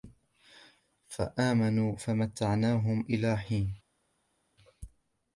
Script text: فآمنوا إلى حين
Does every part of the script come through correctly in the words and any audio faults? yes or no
no